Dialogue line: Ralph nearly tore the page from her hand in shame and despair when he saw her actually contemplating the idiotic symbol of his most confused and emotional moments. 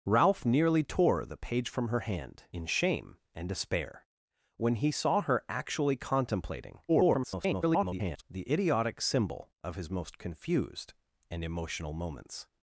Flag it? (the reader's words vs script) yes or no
yes